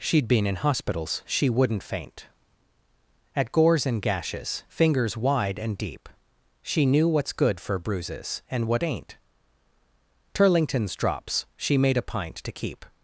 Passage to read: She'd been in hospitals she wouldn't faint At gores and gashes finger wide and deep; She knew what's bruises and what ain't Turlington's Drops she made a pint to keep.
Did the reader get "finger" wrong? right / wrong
wrong